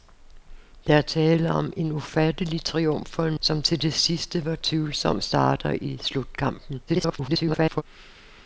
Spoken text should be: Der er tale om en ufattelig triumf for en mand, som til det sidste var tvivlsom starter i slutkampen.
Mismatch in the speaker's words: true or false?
true